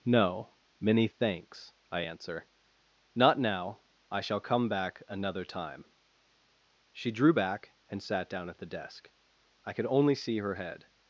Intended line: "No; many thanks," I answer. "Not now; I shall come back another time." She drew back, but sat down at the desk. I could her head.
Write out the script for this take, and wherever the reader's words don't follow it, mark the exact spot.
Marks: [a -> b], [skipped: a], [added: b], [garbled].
"No; many thanks," I answer. "Not now; I shall come back another time." She drew back, [but -> and] sat down at the desk. I could [added: only see] her head.